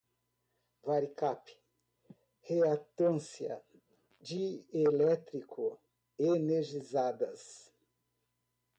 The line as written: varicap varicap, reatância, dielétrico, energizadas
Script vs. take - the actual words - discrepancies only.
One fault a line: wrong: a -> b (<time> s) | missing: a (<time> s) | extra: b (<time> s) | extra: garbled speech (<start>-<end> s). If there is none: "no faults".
missing: varicap (1.5 s)